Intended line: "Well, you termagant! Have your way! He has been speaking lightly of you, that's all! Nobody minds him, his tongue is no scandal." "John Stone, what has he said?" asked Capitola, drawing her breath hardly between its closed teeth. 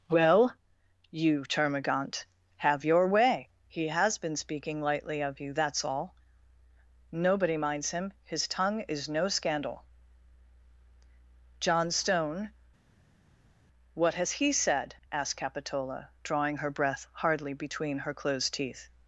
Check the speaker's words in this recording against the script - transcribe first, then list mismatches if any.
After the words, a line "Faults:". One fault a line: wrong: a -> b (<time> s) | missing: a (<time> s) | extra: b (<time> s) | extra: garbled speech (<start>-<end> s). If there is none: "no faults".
"Well, you termagant! Have your way! He has been speaking lightly of you, that's all! Nobody minds him, his tongue is no scandal." "John Stone, what has he said?" asked Capitola, drawing her breath hardly between her closed teeth.
Faults:
wrong: its -> her (18.0 s)